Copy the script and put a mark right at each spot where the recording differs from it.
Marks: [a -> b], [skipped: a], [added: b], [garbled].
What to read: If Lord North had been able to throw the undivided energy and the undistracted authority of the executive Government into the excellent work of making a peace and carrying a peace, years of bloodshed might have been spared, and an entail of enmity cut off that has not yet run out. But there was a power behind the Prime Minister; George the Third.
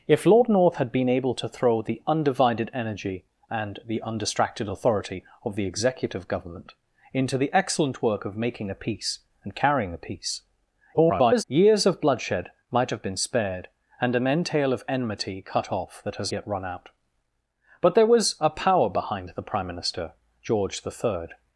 If Lord North had been able to throw the undivided energy and the undistracted authority of the executive Government into the excellent work of making a peace and carrying a peace, [garbled] years of bloodshed might have been spared, and an entail of enmity cut off that has [skipped: not] yet run out. But there was a power behind the Prime Minister; George the Third.